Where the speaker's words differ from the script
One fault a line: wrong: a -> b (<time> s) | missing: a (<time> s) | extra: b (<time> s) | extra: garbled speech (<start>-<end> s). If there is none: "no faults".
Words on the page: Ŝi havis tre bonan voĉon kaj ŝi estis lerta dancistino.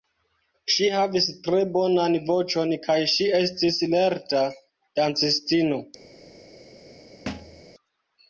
no faults